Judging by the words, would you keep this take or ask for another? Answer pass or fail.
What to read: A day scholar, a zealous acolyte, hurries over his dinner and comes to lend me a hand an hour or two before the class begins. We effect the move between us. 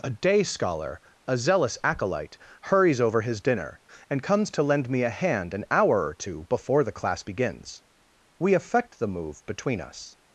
pass